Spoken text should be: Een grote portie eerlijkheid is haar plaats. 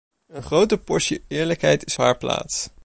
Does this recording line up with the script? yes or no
yes